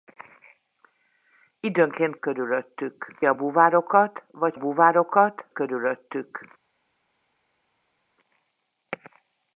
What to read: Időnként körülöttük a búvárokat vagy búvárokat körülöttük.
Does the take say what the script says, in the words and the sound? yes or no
yes